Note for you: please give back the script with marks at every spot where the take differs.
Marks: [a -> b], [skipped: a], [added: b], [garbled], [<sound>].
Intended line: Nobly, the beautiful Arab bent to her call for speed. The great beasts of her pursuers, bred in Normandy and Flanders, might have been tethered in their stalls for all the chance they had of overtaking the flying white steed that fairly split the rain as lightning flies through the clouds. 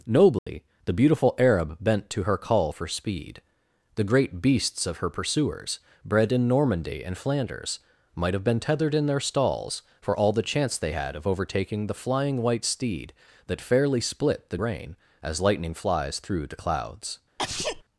Nobly, [dropout] the beautiful Arab bent to her call for speed. The great beasts of her pursuers, bred in Normandy and Flanders, might have been tethered in their stalls for all the chance they had of overtaking the flying white steed that fairly split the rain as lightning flies through the clouds. [sneeze]